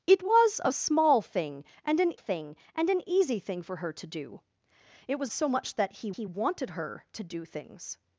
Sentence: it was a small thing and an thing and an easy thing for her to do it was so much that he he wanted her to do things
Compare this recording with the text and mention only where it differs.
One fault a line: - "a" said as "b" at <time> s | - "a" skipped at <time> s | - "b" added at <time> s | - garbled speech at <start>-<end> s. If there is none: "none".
none